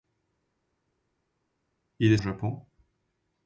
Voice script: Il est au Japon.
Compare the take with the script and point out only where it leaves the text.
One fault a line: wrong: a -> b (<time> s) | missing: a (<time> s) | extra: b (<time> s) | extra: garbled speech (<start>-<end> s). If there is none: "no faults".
no faults